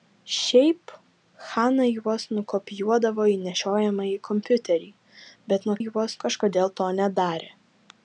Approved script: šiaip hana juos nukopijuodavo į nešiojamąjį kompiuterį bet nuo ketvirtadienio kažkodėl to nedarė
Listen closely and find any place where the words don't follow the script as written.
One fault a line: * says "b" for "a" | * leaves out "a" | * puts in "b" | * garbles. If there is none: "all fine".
* says "juos" for "ketvirtadienio"